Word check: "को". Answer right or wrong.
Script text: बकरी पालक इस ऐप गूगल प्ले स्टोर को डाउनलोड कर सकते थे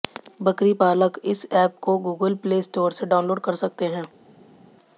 wrong